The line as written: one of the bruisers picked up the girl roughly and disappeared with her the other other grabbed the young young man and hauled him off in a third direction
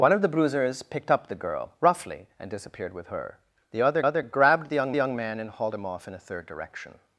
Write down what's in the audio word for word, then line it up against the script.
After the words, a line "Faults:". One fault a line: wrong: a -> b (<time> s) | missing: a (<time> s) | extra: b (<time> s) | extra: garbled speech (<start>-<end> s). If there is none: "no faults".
one of the bruisers picked up the girl roughly and disappeared with her the other other grabbed the young young man and hauled him off in a third direction
Faults:
no faults